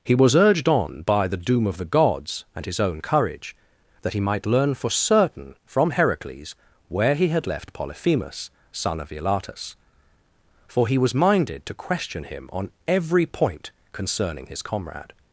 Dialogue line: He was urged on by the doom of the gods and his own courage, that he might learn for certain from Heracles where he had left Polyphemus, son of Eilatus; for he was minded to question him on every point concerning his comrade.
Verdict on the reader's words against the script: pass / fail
pass